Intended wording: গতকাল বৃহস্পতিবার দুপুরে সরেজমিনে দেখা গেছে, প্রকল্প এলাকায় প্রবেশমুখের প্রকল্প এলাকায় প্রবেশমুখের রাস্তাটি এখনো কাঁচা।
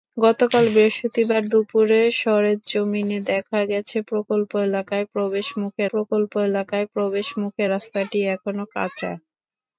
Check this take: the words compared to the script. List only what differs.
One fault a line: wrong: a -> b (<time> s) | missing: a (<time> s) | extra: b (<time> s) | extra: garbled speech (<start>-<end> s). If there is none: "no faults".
no faults